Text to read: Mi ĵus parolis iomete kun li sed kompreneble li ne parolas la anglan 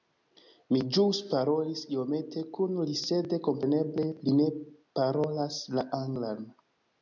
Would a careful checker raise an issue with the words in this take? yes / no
no